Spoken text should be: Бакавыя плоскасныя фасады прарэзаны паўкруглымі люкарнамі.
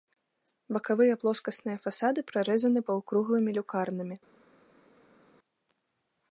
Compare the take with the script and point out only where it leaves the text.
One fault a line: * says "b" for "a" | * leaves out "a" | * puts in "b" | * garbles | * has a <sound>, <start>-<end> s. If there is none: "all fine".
all fine